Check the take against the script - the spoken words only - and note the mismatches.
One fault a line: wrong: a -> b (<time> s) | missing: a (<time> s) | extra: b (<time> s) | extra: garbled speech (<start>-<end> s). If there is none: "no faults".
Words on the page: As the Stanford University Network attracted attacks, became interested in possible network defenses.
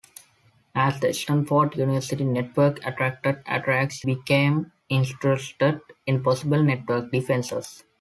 no faults